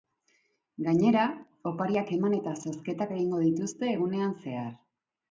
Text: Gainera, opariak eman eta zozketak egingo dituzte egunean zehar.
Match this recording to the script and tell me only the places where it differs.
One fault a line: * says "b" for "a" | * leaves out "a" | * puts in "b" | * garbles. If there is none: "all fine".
all fine